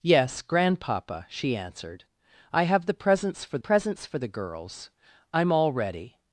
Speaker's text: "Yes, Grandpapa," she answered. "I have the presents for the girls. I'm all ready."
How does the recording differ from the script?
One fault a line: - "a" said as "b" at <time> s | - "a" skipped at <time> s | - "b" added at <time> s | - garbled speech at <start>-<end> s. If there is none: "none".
- "presents for" added at 3.6 s